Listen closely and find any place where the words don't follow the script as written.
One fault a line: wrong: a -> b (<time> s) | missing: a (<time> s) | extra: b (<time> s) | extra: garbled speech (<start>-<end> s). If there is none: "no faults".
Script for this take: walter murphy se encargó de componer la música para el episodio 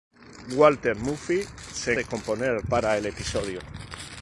missing: encargó (1.9 s)
missing: la música (2.6 s)